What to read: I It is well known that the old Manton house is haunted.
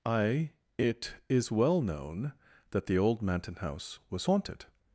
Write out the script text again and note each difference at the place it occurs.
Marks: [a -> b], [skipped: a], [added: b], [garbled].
I It is well known that the old Manton house [is -> was] haunted.